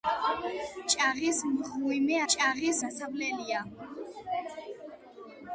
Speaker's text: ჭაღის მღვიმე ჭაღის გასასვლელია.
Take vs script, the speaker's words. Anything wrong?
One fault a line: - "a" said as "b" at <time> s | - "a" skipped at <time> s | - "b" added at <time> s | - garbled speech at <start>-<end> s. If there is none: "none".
none